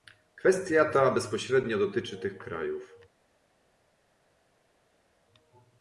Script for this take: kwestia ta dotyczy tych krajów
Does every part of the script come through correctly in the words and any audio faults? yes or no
no